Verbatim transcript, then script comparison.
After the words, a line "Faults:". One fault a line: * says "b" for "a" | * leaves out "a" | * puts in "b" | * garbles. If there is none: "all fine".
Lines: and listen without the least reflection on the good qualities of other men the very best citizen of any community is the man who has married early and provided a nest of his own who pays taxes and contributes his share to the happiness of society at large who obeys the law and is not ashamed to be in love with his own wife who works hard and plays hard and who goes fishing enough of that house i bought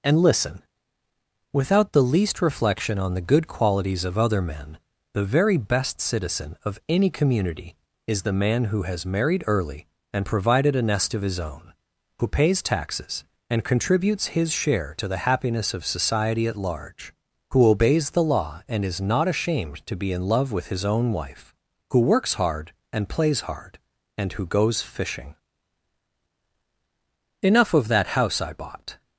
and listen without the least reflection on the good qualities of other men the very best citizen of any community is the man who has married early and provided a nest of his own who pays taxes and contributes his share to the happiness of society at large who obeys the law and is not ashamed to be in love with his own wife who works hard and plays hard and who goes fishing enough of that house i bought
Faults:
all fine